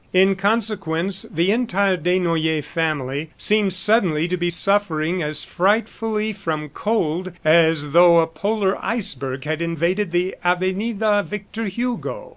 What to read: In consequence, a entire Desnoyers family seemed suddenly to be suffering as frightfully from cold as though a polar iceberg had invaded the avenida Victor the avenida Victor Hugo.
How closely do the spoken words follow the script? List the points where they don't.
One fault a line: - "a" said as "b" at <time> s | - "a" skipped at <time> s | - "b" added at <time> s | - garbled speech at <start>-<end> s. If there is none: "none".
- "a" said as "the" at 1.3 s
- "the avenida Victor" skipped at 11.6 s